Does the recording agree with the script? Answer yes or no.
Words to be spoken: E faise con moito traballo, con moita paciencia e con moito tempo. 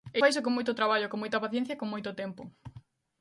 yes